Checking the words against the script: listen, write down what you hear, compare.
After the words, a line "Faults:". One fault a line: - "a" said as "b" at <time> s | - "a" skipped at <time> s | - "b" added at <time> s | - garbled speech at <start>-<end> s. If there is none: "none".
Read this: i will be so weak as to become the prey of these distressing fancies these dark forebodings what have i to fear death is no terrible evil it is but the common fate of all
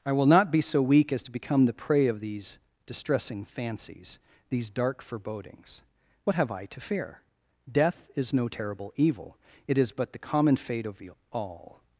i will not be so weak as to become the prey of these distressing fancies these dark forebodings what have i to fear death is no terrible evil it is but the common fate of all
Faults:
- "not" added at 0.2 s